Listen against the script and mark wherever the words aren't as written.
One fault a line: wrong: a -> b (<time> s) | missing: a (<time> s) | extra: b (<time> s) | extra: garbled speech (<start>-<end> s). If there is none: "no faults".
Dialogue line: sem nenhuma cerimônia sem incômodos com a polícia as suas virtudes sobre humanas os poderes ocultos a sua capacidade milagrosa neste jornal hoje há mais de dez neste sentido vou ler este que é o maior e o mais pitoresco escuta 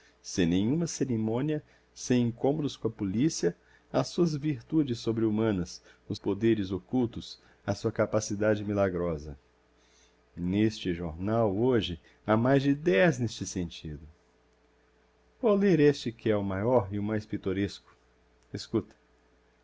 no faults